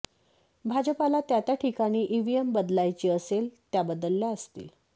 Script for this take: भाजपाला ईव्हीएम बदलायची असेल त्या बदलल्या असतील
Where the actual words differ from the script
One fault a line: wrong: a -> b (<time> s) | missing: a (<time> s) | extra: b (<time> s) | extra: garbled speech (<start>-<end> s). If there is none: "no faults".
extra: त्या त्या ठिकाणी (1.2 s)